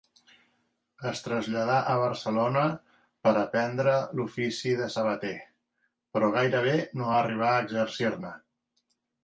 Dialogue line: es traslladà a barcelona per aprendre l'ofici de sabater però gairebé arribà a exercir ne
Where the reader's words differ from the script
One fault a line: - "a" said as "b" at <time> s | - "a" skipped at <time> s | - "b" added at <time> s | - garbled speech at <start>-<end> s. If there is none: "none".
- "no" added at 7.0 s